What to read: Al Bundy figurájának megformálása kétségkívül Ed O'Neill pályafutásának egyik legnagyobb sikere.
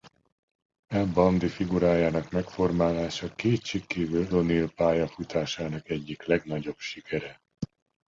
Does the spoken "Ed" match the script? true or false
false